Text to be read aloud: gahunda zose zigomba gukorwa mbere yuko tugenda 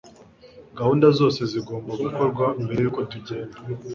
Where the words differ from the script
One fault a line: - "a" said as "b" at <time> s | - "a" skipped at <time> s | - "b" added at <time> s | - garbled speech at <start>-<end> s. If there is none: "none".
none